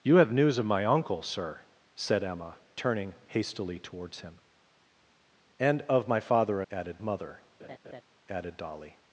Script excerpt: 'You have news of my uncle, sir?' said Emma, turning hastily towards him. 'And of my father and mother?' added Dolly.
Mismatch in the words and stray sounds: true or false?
true